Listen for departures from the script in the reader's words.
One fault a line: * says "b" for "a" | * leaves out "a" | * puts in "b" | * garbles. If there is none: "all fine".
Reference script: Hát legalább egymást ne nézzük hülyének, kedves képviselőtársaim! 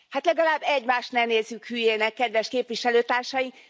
all fine